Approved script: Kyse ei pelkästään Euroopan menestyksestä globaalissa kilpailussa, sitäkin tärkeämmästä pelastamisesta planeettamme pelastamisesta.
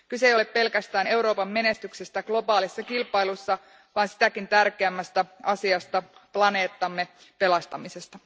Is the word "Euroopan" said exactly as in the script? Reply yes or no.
yes